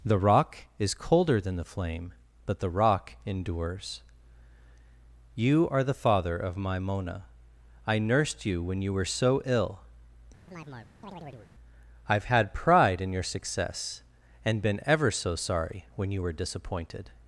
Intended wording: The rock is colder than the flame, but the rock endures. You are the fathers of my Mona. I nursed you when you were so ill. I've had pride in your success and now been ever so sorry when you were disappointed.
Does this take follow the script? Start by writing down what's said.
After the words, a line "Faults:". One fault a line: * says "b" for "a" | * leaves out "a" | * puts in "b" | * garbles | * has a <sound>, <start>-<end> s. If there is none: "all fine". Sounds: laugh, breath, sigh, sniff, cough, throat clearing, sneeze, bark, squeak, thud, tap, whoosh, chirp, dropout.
The rock is colder than the flame, but the rock endures. You are the father of my Mona. I nursed you when you were so ill. I've had pride in your success and been ever so sorry when you were disappointed.
Faults:
* says "father" for "fathers"
* has a chirp, 10.5-11.5 s
* leaves out "now"